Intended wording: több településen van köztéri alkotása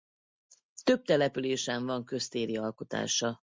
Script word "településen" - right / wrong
right